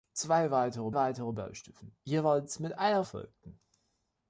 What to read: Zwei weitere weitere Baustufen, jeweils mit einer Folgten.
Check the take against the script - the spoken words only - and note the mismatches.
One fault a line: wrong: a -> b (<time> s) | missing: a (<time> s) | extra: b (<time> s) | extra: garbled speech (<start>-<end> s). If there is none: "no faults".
no faults